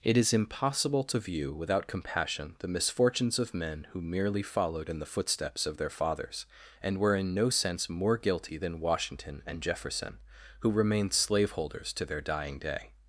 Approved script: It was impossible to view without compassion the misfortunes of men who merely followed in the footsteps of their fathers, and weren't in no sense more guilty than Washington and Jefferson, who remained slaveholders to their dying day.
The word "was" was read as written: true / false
false